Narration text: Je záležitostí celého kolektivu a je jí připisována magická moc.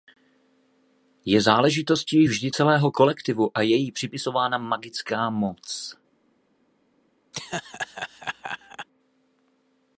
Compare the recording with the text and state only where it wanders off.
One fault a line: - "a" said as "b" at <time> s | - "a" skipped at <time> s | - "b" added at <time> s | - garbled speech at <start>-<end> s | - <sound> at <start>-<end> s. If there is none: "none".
- "vždy" added at 2.2 s
- laugh at 7.3-8.9 s